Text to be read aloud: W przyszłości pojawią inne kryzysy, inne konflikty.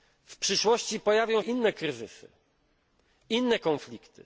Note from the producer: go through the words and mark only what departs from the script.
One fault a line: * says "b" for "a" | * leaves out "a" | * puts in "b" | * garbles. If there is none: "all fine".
all fine